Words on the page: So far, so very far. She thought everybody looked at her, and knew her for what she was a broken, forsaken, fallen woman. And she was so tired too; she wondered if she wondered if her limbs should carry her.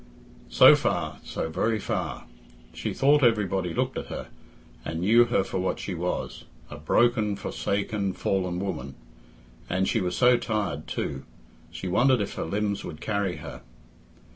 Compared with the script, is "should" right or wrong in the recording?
wrong